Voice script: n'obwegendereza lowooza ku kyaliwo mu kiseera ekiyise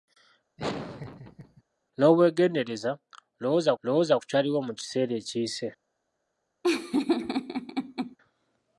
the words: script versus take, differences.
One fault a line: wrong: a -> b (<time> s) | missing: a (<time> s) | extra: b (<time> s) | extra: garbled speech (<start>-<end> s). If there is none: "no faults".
extra: lowooza (3.8 s)